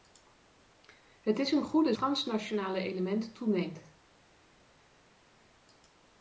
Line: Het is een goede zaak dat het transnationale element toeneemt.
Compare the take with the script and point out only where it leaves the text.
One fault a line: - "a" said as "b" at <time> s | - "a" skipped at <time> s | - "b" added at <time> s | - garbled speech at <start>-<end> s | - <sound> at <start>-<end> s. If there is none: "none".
- "zaak dat het" skipped at 1.9 s